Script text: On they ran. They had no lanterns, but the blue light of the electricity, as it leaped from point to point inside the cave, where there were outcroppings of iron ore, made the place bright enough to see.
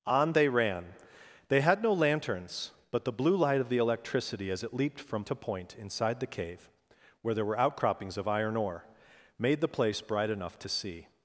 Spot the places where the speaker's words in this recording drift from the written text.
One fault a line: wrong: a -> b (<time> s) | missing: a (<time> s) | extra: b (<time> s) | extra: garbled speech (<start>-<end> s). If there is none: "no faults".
missing: point (5.2 s)